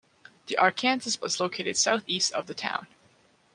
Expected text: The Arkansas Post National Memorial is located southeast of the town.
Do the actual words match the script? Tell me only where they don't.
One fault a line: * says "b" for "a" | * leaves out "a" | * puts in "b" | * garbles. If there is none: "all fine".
* leaves out "Post National Memorial"